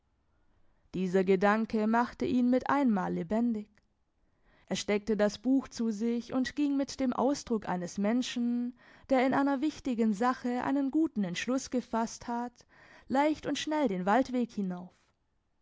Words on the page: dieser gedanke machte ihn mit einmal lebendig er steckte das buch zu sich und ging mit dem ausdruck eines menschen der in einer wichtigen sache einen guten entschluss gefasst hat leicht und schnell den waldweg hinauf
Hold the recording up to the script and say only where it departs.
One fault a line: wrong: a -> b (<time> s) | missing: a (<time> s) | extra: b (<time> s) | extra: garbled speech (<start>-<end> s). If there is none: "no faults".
no faults